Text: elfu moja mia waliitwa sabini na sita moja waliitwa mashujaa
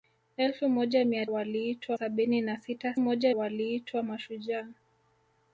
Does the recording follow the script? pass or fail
pass